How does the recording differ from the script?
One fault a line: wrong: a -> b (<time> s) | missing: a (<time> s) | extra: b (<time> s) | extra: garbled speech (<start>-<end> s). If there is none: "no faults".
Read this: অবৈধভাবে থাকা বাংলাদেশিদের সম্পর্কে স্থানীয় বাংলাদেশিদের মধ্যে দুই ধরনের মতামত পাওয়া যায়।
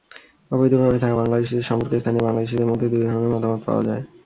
no faults